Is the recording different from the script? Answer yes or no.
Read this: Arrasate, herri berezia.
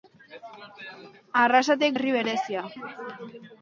no